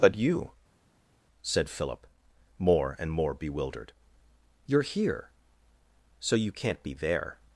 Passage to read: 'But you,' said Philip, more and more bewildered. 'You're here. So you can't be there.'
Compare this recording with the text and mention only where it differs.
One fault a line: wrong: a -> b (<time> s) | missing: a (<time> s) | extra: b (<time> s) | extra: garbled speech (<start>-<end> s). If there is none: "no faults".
no faults